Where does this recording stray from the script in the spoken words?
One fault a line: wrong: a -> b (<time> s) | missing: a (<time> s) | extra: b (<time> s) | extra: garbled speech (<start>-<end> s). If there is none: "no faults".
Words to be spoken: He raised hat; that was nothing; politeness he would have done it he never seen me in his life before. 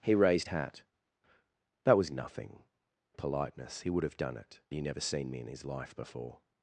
no faults